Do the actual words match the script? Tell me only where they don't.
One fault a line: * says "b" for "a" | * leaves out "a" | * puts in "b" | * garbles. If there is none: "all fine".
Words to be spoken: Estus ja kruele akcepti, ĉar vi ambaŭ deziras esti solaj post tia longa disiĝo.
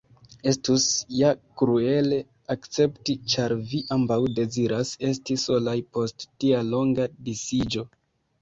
all fine